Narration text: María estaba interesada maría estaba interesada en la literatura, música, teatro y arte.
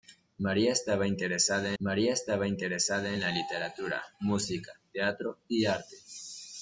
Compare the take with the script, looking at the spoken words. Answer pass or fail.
pass